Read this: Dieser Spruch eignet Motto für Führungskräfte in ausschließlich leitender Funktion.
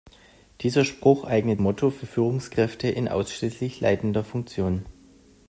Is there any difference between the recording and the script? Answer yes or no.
no